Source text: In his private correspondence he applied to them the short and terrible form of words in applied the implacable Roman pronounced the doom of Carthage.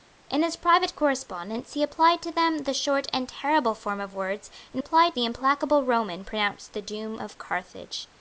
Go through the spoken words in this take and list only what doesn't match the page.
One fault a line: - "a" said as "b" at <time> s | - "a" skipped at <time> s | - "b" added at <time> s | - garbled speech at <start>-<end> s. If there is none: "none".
none